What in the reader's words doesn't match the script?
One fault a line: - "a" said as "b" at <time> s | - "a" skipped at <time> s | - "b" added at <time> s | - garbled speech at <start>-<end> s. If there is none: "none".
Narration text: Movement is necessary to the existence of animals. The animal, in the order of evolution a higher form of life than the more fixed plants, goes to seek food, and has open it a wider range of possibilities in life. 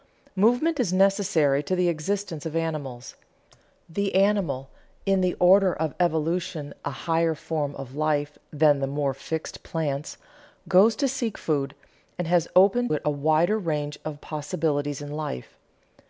none